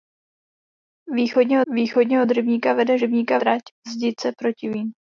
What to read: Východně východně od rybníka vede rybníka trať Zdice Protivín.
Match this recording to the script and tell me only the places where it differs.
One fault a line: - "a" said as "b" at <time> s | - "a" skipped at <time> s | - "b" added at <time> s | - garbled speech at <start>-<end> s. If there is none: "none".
none